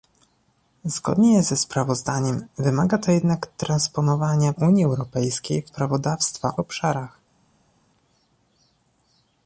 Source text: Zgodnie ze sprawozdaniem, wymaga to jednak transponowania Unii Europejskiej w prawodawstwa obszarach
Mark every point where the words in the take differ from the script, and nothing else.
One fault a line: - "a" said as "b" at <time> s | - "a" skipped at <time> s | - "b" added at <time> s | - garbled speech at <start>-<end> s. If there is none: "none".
none